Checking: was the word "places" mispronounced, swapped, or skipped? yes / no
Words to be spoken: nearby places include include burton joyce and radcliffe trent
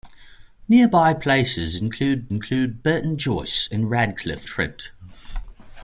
no